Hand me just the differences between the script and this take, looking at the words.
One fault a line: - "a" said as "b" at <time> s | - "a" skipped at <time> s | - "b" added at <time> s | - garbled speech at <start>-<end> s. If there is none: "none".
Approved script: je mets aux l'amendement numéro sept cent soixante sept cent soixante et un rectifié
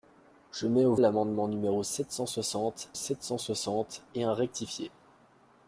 none